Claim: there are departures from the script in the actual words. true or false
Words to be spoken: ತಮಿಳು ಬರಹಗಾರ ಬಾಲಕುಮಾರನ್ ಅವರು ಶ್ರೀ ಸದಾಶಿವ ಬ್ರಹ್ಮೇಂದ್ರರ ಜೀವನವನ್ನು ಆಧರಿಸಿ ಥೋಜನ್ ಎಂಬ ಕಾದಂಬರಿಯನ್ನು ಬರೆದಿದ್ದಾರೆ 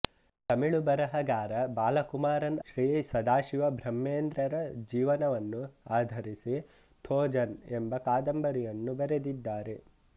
true